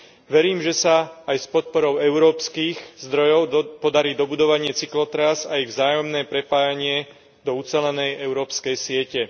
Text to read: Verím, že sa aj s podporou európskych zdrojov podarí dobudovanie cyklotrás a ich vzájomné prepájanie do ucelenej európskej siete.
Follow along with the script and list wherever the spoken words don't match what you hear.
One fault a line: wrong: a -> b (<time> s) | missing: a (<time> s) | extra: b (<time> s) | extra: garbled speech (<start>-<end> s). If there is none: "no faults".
no faults